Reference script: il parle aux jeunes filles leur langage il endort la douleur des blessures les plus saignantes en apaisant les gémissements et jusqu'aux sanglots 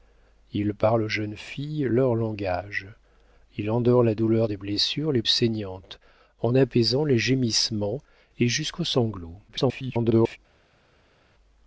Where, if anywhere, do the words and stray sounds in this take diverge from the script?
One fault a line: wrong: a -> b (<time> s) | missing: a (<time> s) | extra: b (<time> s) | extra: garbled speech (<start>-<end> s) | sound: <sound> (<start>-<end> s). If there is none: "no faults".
missing: plus (5.2 s)
extra: garbled speech (9.5-10.4 s)